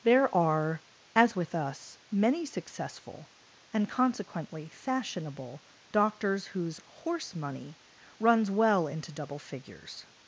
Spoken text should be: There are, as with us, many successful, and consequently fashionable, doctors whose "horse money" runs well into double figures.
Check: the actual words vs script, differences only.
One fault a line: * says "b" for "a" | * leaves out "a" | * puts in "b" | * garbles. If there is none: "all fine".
all fine